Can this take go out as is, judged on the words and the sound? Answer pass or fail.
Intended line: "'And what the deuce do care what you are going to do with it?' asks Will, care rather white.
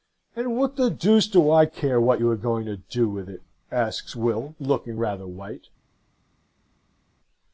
fail